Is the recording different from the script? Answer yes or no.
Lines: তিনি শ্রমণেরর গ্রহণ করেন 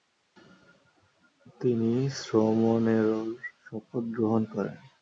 yes